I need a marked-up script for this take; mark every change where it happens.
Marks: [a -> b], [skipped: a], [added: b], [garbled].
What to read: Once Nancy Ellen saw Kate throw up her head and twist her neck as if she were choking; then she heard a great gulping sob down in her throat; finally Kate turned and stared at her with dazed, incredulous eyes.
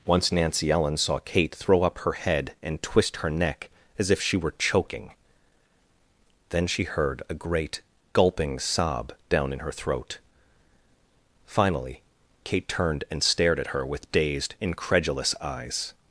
Once Nancy Ellen saw Kate throw up her head and twist her neck as if she were choking; then she heard a great gulping sob down in her throat; finally Kate turned and stared at her with dazed, incredulous eyes.